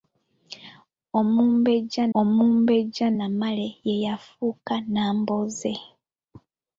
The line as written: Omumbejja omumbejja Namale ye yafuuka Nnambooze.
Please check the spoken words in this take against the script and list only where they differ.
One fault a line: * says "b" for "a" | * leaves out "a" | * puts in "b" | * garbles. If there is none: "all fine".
all fine